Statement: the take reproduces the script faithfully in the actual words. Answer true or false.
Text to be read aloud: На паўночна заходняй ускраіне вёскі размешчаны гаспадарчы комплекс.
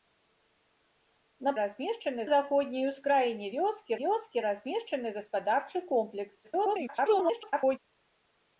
false